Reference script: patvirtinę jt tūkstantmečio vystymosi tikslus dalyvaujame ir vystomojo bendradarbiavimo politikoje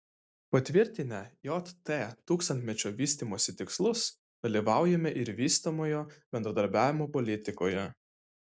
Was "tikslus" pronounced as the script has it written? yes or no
yes